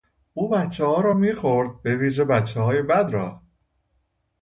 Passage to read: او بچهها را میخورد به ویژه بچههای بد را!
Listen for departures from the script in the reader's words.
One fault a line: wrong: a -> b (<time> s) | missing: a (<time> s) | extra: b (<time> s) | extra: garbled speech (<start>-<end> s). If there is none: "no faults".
no faults